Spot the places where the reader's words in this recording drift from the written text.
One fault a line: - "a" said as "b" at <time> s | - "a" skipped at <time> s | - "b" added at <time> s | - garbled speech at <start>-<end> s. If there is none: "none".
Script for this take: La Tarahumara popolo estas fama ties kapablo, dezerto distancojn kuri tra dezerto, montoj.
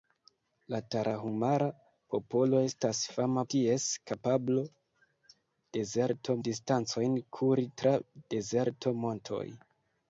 none